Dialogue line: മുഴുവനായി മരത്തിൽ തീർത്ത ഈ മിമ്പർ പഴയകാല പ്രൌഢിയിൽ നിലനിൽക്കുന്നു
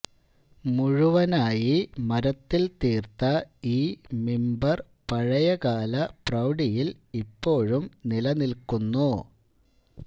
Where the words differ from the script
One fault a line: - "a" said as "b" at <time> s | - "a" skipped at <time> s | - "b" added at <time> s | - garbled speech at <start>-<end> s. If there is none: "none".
- "ഇപ്പോഴും" added at 7.2 s